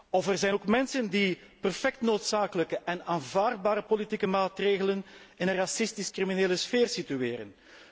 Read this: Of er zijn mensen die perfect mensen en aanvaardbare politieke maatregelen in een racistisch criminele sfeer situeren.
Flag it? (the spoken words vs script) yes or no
yes